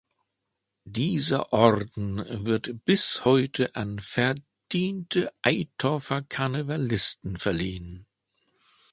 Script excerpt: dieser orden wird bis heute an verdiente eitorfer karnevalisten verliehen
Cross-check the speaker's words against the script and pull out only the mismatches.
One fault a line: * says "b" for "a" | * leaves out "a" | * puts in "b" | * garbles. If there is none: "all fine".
all fine